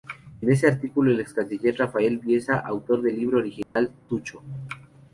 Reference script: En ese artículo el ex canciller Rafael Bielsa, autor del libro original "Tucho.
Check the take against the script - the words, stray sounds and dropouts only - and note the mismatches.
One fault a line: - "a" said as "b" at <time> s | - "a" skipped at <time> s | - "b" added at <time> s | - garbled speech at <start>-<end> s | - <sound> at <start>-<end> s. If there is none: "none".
- dropout at 3.6-3.8 s